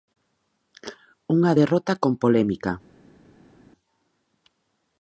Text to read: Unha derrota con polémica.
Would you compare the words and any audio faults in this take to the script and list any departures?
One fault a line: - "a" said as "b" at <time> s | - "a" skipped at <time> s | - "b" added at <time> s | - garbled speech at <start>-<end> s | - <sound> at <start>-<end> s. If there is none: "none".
none